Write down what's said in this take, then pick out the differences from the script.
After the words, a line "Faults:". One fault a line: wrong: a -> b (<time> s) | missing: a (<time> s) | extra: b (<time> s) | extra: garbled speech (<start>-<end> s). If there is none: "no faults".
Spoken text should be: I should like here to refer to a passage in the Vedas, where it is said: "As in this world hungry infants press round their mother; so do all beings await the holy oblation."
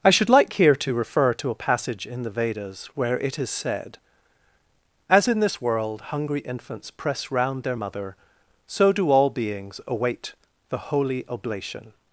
I should like here to refer to a passage in the Vedas, where it is said: "As in this world hungry infants press round their mother; so do all beings await the holy oblation."
Faults:
no faults